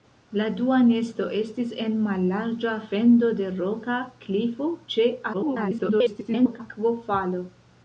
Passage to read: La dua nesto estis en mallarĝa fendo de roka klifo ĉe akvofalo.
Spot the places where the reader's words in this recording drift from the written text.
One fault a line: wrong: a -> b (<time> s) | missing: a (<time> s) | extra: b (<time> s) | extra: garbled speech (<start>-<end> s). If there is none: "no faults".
extra: garbled speech (5.3-6.6 s)